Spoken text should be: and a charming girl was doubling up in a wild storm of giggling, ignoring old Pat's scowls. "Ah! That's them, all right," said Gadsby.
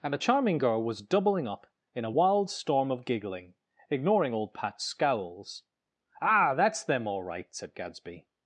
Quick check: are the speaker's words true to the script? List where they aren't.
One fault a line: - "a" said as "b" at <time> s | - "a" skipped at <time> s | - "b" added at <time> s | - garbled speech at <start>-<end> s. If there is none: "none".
none